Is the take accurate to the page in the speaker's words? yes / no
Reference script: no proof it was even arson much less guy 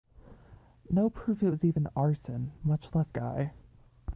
yes